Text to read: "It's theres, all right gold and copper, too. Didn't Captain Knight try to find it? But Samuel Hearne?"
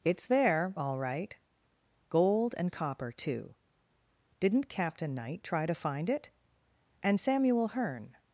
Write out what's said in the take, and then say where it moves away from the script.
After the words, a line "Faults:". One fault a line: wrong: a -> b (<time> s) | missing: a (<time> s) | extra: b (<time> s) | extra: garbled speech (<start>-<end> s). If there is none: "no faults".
"It's there, all right gold and copper, too. Didn't Captain Knight try to find it? And Samuel Hearne?"
Faults:
wrong: theres -> there (0.2 s)
wrong: But -> And (7.0 s)